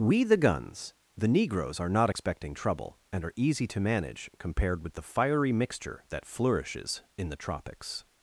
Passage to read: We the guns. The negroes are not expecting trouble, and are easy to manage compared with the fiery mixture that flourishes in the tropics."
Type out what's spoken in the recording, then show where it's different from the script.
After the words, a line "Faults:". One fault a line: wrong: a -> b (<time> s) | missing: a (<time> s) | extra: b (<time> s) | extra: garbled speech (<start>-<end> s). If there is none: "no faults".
We the guns. The negroes are not expecting trouble, and are easy to manage compared with the fiery mixture that flourishes in the tropics."
Faults:
no faults